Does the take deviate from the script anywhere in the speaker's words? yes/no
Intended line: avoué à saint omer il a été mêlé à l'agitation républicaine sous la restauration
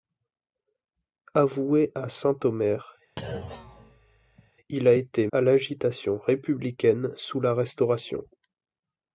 yes